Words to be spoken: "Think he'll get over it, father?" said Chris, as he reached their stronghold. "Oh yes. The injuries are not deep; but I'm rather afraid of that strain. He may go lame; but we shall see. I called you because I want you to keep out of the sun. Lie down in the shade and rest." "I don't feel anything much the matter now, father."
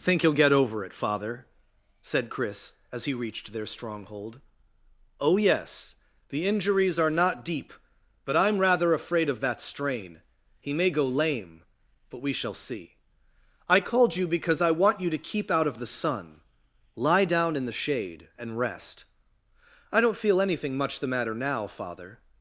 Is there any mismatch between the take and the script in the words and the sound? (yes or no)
no